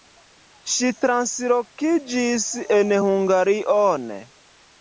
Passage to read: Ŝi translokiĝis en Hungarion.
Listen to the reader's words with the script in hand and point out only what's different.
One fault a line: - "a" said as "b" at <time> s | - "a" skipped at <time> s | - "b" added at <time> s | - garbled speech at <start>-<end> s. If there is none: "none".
none